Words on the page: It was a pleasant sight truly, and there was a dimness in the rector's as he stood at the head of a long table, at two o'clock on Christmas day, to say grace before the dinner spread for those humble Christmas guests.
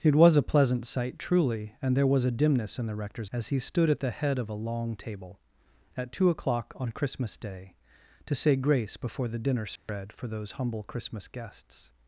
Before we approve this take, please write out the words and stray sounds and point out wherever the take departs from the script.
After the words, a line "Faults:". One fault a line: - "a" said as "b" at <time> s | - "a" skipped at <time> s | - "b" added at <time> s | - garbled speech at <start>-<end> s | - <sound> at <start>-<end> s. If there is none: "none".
It was a pleasant sight truly, and there was a dimness in the rector's as he stood at the head of a long table, at two o'clock on Christmas day, to say grace before the dinner spread for those humble Christmas guests.
Faults:
- dropout at 9.8-9.9 s